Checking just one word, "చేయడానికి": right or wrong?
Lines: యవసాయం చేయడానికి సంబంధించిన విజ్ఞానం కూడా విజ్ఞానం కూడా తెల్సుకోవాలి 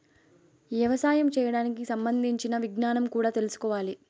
right